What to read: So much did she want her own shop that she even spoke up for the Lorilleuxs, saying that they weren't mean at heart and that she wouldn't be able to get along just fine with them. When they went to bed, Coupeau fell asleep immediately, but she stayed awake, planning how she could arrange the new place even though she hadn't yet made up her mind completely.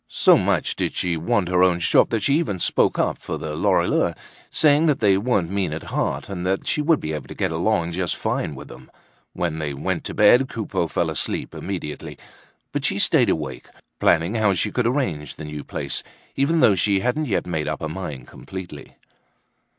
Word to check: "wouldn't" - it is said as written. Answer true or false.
false